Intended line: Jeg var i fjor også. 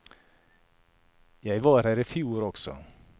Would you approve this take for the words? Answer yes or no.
no